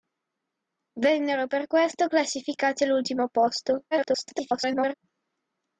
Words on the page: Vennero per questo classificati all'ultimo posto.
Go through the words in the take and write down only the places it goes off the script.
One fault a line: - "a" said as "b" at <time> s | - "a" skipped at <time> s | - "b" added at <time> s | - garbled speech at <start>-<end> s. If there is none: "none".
- garbled speech at 3.9-4.9 s